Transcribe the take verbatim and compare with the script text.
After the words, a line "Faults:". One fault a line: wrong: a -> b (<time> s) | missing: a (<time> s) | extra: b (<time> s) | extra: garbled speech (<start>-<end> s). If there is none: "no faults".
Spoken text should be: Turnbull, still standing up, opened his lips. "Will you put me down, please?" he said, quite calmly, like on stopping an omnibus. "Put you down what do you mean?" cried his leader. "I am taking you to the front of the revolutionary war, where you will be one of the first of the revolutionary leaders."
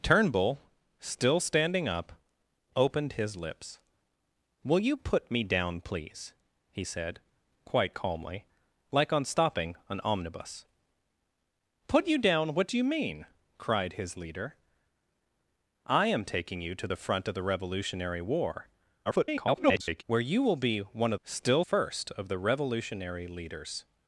Turnbull, still standing up, opened his lips. "Will you put me down, please?" he said, quite calmly, like on stopping an omnibus. "Put you down what do you mean?" cried his leader. "I am taking you to the front of the revolutionary war, [garbled] where you will be one of still first of the revolutionary leaders."
Faults:
extra: garbled speech (19.0-20.0 s)
wrong: the -> still (21.2 s)